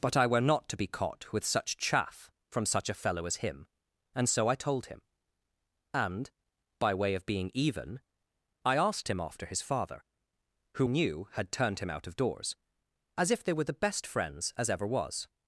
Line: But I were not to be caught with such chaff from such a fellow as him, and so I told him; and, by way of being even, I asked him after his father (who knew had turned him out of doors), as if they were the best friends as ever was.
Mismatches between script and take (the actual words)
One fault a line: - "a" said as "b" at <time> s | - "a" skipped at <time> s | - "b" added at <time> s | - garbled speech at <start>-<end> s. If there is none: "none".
none